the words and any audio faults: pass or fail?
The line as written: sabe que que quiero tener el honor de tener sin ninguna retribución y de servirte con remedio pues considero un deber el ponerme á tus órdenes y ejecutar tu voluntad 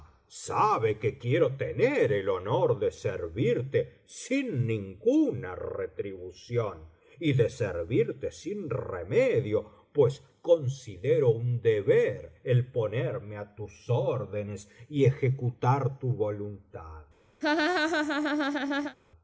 fail